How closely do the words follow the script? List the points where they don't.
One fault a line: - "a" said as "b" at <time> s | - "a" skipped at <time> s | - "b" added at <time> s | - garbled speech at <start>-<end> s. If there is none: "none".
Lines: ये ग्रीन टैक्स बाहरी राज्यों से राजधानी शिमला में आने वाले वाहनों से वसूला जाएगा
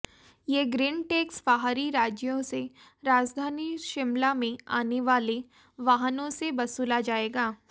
none